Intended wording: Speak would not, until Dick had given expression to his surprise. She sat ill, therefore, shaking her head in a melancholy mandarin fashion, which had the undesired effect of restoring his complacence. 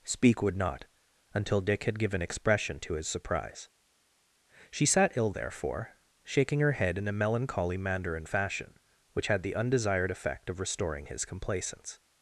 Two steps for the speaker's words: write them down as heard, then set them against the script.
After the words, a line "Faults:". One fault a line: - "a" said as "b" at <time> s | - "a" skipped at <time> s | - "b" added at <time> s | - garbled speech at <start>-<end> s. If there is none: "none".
Speak would not, until Dick had given expression to his surprise. She sat ill, therefore, shaking her head in a melancholy mandarin fashion, which had the undesired effect of restoring his complacence.
Faults:
none